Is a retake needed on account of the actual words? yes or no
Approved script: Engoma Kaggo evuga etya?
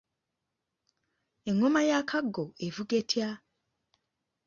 yes